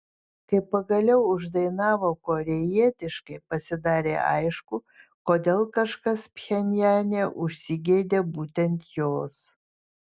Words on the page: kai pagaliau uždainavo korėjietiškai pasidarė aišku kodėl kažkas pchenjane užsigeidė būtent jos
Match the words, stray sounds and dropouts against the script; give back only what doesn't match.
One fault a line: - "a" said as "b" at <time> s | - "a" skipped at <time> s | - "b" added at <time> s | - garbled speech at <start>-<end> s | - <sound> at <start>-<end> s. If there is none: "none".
none